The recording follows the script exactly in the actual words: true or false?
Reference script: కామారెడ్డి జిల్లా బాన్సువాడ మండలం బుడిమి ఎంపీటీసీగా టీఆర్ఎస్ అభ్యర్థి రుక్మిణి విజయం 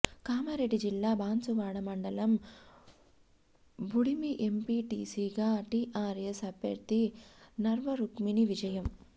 false